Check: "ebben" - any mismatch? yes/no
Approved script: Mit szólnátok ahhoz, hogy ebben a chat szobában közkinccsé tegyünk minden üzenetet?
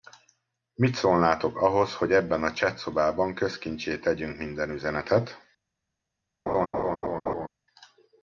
no